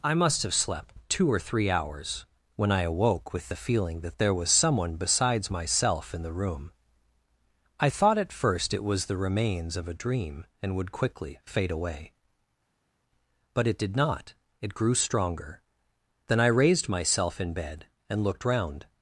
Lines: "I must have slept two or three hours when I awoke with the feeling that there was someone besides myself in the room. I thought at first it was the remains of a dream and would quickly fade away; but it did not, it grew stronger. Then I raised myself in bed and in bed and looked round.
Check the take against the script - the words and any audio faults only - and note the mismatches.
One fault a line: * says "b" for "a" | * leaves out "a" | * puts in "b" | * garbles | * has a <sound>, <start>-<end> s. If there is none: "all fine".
* leaves out "in bed and"